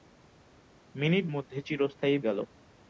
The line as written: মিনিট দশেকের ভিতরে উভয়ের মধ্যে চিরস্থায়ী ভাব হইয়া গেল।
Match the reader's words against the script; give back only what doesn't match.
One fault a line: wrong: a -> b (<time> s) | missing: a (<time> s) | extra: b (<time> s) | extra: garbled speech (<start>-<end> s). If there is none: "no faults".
missing: দশেকের ভিতরে উভয়ের (1.2 s)
missing: ভাব হইয়া (2.2 s)